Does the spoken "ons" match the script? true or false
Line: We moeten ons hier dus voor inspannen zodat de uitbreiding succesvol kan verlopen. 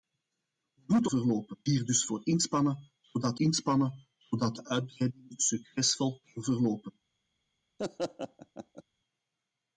false